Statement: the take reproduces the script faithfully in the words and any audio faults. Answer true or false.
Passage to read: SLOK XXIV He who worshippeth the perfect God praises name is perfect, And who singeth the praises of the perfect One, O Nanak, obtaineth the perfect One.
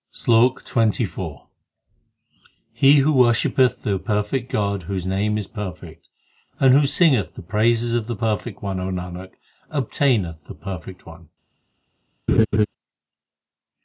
false